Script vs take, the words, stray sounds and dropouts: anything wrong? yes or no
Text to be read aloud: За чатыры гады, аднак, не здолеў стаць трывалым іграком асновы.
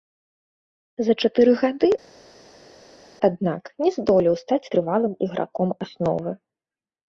no